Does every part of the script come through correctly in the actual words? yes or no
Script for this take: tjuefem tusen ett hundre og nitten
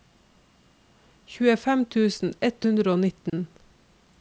yes